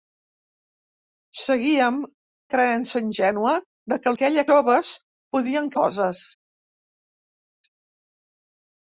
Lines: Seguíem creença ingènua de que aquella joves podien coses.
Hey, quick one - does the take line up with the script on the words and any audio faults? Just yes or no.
yes